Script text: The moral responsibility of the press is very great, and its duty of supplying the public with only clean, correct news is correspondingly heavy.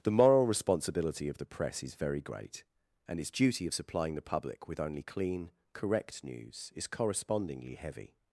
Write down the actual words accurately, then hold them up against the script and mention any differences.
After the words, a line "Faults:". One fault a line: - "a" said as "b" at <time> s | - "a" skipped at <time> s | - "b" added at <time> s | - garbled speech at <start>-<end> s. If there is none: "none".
The moral responsibility of the press is very great, and its duty of supplying the public with only clean, correct news is correspondingly heavy.
Faults:
none